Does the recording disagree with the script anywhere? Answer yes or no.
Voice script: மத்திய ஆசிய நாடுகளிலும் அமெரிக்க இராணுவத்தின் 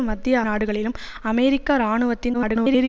yes